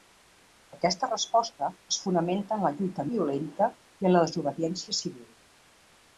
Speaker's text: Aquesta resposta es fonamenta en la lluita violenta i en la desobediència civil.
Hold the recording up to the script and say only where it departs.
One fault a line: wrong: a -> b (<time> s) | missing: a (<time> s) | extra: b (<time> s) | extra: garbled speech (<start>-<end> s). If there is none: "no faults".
no faults